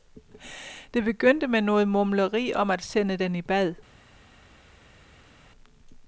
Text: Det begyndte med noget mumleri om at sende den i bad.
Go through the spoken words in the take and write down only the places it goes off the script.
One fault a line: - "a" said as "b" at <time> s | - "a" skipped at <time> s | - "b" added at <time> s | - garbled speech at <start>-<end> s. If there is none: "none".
none